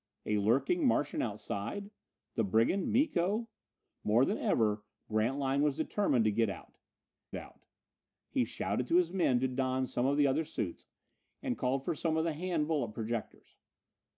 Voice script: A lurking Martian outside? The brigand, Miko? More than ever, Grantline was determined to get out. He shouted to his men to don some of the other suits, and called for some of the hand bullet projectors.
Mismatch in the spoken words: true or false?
true